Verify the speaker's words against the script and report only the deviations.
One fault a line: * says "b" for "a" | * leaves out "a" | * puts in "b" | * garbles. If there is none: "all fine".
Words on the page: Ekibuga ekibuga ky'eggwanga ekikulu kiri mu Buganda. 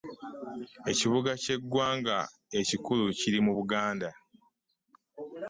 * leaves out "ekibuga"